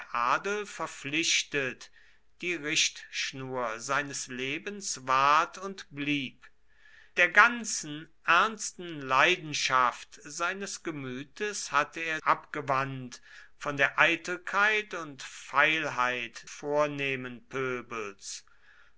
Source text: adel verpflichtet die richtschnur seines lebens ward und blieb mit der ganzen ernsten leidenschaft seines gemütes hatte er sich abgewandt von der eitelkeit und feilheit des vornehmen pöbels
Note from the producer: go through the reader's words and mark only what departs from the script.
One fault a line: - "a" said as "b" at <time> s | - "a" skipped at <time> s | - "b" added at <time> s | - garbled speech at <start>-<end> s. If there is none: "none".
- "mit" skipped at 6.5 s
- "sich" skipped at 12.2 s
- "des" skipped at 16.5 s